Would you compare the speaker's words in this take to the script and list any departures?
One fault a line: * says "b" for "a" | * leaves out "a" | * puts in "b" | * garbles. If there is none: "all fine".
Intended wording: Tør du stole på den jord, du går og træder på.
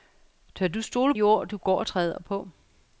* leaves out "på den"